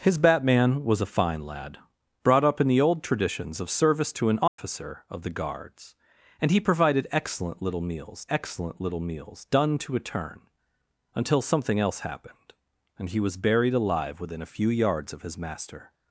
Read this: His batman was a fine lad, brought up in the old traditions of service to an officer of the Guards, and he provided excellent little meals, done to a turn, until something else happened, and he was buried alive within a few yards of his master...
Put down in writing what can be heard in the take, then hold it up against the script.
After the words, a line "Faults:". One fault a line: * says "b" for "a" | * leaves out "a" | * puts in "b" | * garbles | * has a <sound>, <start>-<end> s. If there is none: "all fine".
His batman was a fine lad, brought up in the old traditions of service to an officer of the Guards, and he provided excellent little meals excellent little meals, done to a turn, until something else happened, and he was buried alive within a few yards of his master...
Faults:
* has a dropout, 4.5-4.6 s
* puts in "excellent little meals"